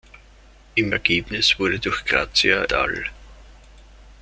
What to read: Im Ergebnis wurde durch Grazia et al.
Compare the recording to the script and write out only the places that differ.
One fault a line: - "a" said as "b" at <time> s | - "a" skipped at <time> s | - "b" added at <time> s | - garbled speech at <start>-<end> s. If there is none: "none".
- "et" skipped at 2.7 s